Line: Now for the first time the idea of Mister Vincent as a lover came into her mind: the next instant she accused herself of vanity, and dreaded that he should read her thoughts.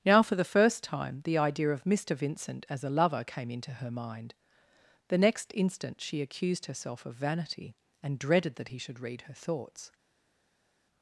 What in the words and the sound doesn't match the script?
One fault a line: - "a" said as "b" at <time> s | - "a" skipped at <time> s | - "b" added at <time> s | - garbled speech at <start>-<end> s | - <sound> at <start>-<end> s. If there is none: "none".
none